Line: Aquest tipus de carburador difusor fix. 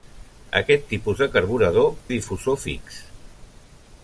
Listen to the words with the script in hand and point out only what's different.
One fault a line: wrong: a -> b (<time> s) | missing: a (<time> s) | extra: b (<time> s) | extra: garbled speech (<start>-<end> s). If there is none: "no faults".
no faults